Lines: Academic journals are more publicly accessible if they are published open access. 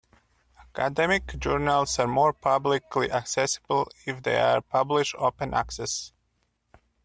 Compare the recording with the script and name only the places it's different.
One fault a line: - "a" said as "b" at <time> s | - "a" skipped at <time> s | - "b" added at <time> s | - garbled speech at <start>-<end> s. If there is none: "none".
none